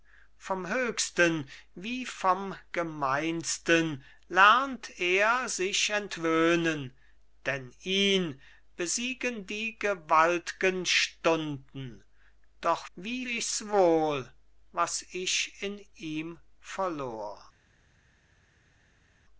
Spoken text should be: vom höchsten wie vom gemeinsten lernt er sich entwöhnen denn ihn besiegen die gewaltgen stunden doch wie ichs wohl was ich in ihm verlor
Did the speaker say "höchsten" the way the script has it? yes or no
yes